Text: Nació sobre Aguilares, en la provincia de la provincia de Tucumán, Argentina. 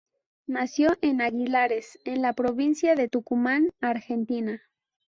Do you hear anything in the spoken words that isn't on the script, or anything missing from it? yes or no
yes